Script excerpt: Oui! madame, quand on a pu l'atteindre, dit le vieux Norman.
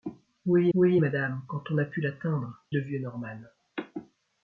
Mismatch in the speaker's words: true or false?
true